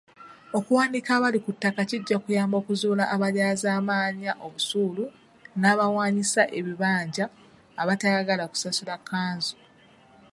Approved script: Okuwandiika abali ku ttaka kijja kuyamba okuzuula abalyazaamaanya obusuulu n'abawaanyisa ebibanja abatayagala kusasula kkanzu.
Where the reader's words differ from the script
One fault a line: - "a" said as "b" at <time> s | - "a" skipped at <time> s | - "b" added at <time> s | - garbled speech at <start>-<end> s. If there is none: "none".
none